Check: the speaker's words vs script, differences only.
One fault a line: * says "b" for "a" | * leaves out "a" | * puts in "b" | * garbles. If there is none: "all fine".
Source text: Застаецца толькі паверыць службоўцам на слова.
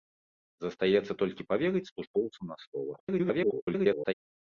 * garbles